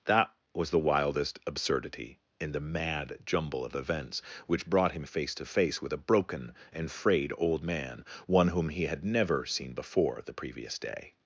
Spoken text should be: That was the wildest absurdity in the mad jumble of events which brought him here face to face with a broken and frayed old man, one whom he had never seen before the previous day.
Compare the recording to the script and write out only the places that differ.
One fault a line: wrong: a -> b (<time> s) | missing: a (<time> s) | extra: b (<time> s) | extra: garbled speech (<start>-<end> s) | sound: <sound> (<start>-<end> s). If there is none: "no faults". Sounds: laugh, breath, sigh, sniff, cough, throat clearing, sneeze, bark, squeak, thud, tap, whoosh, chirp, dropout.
missing: here (5.0 s)